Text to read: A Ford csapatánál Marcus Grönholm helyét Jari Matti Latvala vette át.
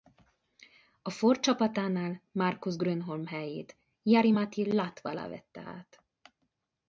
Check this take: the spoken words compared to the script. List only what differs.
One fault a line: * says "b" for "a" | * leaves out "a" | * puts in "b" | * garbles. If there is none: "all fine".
all fine